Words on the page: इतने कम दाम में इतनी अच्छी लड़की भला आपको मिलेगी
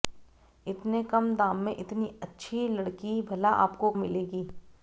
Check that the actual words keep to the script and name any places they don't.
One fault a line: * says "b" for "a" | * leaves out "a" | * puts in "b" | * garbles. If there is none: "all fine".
all fine